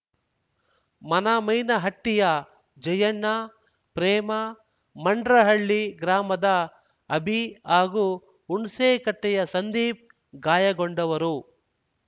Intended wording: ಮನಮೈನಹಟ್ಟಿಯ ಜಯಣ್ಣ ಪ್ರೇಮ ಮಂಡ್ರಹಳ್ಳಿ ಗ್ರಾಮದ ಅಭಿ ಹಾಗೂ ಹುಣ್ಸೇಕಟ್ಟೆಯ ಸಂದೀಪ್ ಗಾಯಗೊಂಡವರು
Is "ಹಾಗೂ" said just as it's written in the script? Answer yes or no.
yes